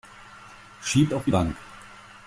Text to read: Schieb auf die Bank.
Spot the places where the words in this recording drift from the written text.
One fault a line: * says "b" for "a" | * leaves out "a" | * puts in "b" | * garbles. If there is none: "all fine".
all fine